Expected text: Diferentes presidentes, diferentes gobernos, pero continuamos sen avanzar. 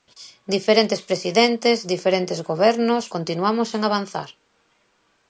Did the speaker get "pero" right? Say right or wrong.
wrong